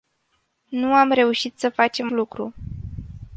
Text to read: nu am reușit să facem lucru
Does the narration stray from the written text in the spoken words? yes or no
no